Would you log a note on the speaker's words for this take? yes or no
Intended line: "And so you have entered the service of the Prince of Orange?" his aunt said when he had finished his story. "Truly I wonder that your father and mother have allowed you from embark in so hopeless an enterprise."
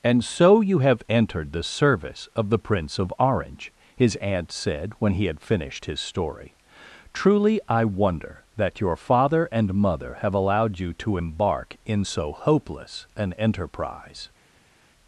yes